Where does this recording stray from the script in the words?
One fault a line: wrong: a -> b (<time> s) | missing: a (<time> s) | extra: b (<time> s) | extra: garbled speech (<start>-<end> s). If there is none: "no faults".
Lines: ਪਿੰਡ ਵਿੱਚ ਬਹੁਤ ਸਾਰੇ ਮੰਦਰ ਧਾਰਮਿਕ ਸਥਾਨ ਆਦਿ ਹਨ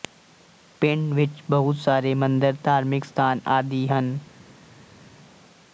no faults